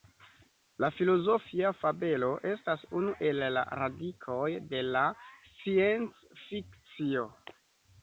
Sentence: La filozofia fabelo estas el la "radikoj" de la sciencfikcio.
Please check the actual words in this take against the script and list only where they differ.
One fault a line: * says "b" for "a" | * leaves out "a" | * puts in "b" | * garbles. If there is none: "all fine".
* puts in "unu"